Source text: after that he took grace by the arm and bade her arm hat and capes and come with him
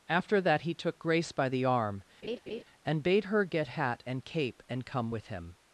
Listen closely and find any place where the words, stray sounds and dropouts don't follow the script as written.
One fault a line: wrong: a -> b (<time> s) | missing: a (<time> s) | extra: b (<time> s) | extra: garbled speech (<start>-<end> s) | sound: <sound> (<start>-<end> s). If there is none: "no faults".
sound: laugh (2.2-2.6 s)
wrong: arm -> get (3.4 s)
wrong: capes -> cape (4.2 s)